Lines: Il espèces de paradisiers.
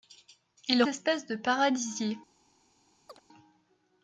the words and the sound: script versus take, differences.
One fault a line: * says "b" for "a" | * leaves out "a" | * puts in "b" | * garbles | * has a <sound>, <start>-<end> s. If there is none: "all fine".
* has a chirp, 3.1-3.2 s